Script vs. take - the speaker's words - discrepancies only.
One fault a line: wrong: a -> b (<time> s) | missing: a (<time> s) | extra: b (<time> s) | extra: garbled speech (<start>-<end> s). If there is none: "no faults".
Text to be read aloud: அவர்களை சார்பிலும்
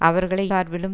no faults